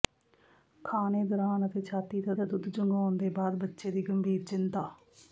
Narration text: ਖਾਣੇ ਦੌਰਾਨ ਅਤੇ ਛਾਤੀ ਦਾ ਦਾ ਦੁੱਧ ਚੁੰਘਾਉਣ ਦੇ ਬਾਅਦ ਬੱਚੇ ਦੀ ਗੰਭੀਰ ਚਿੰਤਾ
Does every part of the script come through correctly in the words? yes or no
yes